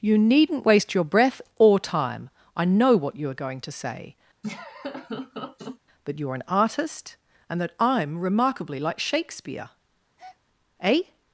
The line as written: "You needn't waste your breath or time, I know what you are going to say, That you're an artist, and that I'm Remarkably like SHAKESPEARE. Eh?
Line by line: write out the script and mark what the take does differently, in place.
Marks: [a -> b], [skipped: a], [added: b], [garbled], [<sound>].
"You needn't waste your breath or time, I know what you are going to say, [laugh] That you're an artist, and that I'm Remarkably like SHAKESPEARE. [breath] Eh?